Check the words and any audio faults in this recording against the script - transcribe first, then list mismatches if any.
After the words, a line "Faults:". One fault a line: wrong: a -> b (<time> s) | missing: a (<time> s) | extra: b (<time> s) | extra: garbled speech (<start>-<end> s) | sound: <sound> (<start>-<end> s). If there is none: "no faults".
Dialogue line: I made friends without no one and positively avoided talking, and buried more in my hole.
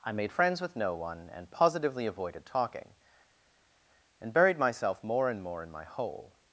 I made friends with no one and positively avoided talking, and buried myself more and more in my hole.
Faults:
wrong: without -> with (0.6 s)
extra: myself more and (4.6 s)